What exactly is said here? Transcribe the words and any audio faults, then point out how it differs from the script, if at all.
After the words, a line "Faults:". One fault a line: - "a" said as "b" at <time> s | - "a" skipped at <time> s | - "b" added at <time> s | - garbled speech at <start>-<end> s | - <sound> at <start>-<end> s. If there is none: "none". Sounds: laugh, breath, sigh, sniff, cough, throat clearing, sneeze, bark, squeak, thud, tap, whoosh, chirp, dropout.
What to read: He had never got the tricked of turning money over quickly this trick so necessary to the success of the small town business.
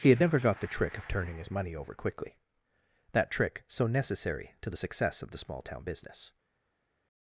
He had never got the trick of turning his money over quickly that trick so necessary to the success of the small town business.
Faults:
- "tricked" said as "trick" at 0.7 s
- "his" added at 1.4 s
- "this" said as "that" at 3.1 s